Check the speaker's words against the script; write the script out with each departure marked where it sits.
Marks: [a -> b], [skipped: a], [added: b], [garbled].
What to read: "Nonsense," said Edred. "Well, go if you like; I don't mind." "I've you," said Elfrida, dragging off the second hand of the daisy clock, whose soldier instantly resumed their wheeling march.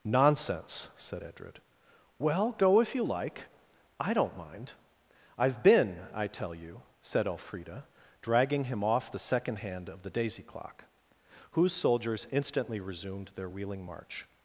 "Nonsense," said Edred. "Well, go if you like; I don't mind." "I've [added: been I tell] you," said Elfrida, dragging [added: him] off the second hand of the daisy clock, whose [soldier -> soldiers] instantly resumed their wheeling march.